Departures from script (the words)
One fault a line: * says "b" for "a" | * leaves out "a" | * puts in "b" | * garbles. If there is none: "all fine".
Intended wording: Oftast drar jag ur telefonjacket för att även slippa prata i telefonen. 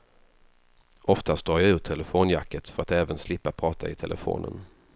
all fine